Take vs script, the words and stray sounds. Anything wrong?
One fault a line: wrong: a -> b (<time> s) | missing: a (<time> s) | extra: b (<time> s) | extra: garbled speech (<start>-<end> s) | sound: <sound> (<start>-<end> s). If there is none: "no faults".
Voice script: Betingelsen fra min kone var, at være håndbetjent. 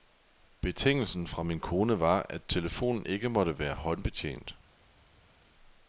extra: telefonen ikke måtte (2.5 s)